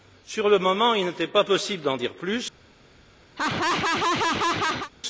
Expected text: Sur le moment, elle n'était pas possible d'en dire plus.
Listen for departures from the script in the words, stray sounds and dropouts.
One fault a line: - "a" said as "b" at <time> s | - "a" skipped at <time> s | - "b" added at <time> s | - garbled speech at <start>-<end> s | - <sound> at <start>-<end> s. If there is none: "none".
- "elle" said as "il" at 0.9 s
- laugh at 3.4-4.9 s